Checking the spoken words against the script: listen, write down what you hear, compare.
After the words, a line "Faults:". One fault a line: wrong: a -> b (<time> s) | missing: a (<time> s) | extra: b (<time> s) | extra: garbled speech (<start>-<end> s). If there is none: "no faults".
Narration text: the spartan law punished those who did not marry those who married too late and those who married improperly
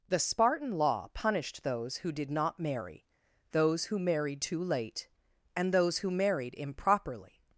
the spartan law punished those who did not marry those who married too late and those who married improperly
Faults:
no faults